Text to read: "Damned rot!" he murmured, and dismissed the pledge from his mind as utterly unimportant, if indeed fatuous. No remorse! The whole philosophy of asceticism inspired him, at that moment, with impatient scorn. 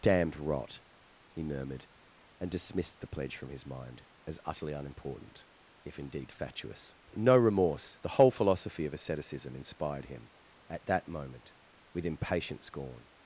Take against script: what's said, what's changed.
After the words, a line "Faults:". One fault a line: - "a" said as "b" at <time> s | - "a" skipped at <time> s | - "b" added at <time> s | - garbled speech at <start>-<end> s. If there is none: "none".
"Damned rot!" he murmured, and dismissed the pledge from his mind as utterly unimportant, if indeed fatuous. No remorse! The whole philosophy of asceticism inspired him, at that moment, with impatient scorn.
Faults:
none